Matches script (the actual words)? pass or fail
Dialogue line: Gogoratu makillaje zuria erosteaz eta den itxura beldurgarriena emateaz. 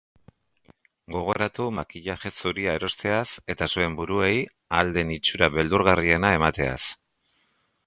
fail